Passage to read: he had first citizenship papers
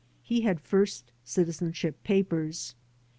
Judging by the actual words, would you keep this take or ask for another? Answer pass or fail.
pass